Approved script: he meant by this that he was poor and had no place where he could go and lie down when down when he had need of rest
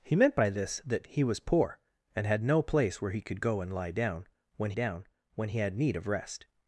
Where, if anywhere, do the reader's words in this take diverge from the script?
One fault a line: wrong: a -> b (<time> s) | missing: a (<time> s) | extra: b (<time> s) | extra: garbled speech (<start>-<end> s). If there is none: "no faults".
no faults